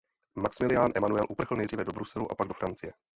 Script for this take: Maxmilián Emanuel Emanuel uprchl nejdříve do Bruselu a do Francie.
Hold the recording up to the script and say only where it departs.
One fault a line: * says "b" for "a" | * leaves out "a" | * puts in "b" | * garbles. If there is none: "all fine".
* leaves out "Emanuel"
* puts in "pak"